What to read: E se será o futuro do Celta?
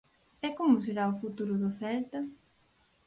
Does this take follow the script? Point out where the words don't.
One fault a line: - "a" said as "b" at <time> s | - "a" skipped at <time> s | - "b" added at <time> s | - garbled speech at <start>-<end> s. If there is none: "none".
- "se" said as "como" at 0.6 s